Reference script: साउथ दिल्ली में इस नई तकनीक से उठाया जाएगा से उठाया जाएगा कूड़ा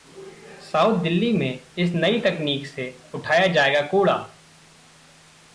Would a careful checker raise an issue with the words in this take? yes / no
yes